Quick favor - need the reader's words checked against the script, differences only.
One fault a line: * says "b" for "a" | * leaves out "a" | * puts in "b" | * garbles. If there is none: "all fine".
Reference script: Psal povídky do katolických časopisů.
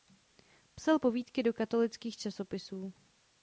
all fine